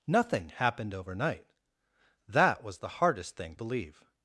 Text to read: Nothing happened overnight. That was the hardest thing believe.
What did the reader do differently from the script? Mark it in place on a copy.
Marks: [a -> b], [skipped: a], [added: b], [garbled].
Nothing happened overnight. That was the hardest thing believe.